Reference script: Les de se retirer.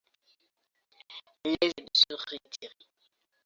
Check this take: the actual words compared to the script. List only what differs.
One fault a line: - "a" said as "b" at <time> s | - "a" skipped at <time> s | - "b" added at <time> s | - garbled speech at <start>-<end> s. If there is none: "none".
none